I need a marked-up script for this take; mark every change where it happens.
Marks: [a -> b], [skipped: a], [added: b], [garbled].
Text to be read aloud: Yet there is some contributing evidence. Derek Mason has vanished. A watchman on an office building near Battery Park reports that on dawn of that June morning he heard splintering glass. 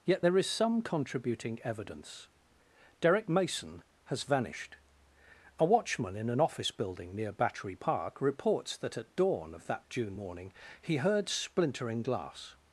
Yet there is some contributing evidence. Derek Mason has vanished. A watchman [on -> in] an office building near Battery Park reports that [on -> at] dawn of that June morning he heard splintering glass.